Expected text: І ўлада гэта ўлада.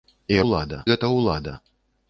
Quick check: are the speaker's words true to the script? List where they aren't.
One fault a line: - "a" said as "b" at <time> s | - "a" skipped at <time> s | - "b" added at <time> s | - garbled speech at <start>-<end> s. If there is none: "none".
none